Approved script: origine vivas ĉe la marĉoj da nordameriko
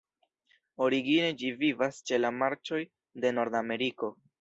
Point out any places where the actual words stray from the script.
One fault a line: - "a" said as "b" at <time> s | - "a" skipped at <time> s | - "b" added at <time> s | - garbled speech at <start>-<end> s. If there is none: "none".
- "ĝi" added at 1.4 s
- "da" said as "de" at 3.2 s